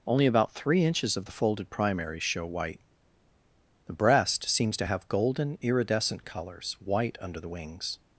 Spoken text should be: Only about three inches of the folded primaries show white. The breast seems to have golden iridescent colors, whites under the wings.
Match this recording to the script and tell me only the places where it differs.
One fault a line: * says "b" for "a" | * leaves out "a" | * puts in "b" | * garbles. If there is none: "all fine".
* says "white" for "whites"